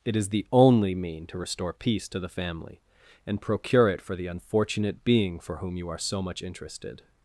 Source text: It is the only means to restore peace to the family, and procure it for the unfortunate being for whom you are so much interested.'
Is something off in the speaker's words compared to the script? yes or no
yes